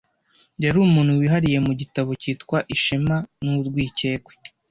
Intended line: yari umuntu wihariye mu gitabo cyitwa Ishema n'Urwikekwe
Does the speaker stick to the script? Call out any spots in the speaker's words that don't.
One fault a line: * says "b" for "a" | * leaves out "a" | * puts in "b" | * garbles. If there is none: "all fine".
all fine